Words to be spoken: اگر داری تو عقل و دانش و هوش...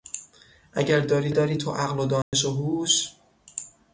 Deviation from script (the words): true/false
true